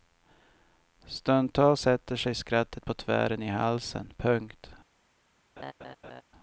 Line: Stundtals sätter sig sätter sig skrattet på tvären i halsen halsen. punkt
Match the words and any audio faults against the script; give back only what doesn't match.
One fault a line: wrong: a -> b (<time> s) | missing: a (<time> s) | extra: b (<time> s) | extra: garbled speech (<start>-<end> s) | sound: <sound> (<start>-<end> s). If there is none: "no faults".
missing: sätter sig (2.3 s)
missing: halsen (4.1 s)
sound: laugh (5.6-6.2 s)